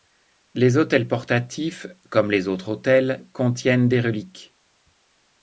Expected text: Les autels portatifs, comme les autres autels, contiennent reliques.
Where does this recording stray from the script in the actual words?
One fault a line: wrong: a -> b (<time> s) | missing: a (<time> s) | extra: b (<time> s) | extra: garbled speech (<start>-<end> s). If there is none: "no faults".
extra: des (3.9 s)